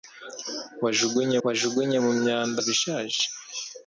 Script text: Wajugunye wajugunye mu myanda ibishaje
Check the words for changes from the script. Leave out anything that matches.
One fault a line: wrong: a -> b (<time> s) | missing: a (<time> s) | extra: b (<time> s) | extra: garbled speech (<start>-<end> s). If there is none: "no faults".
no faults